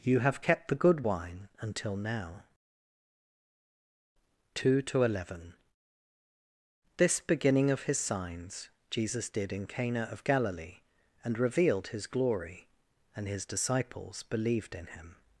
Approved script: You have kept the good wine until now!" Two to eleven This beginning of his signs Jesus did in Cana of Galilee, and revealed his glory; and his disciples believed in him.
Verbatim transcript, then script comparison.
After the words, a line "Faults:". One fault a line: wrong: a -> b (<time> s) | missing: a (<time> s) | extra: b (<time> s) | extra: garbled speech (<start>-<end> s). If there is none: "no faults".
You have kept the good wine until now!" Two to eleven This beginning of his signs Jesus did in Cana of Galilee, and revealed his glory; and his disciples believed in him.
Faults:
no faults